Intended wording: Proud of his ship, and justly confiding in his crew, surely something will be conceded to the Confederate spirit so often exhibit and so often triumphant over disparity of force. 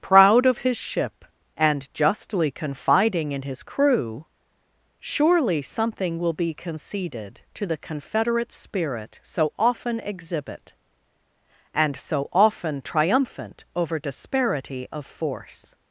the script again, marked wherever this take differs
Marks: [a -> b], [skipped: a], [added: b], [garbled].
Proud of his ship, and justly confiding in his crew, surely something will be conceded to the Confederate spirit so often exhibit and so often triumphant over disparity of force.